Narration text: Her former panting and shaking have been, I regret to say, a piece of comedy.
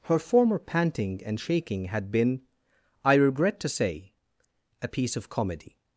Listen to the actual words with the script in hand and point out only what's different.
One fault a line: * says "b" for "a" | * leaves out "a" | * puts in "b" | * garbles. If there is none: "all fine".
* says "had" for "have"